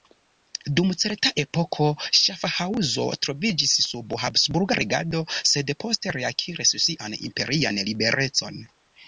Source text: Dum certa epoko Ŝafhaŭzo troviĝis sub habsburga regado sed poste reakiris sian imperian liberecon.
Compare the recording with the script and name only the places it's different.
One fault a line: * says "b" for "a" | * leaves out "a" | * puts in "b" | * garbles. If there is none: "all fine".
all fine